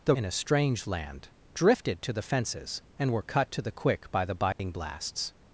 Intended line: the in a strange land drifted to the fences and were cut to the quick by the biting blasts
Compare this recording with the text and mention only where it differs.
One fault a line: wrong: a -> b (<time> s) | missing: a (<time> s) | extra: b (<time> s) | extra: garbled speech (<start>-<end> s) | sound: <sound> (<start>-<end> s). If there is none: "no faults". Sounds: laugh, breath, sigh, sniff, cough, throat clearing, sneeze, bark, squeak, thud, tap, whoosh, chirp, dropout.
sound: dropout (4.5-4.6 s)